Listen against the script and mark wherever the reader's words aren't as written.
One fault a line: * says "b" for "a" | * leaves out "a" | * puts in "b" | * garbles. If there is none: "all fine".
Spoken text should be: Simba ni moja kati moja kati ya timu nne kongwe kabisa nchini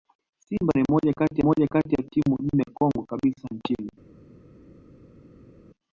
all fine